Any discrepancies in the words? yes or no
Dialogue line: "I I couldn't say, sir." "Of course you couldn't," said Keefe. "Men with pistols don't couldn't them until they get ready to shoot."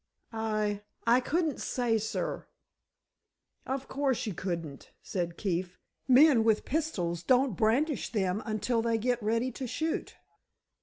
yes